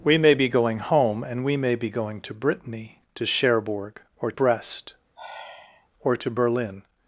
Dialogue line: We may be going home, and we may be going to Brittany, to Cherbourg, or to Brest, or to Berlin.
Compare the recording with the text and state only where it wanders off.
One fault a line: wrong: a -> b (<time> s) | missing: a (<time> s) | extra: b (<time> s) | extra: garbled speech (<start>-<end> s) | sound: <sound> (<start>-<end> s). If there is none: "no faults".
missing: to (4.3 s)
sound: sigh (5.2-5.9 s)